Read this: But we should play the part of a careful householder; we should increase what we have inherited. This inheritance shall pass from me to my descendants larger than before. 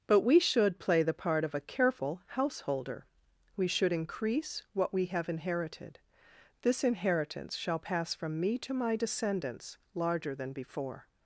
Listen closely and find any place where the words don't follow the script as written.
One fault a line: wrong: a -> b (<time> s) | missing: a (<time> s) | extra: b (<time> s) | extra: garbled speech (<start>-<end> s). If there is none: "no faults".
no faults